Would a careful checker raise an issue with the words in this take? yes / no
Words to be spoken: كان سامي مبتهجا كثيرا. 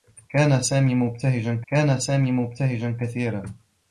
yes